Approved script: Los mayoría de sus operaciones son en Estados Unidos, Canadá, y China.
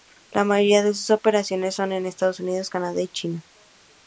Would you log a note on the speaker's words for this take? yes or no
yes